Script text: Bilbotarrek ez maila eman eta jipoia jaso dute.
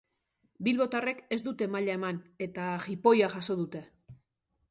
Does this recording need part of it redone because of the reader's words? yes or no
yes